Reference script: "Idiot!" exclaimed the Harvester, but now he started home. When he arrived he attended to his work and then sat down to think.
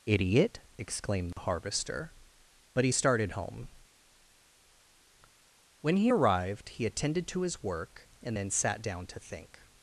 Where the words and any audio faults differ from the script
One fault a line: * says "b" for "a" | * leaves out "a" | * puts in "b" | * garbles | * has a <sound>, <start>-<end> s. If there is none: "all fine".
* has a dropout, 1.3-1.4 s
* leaves out "now"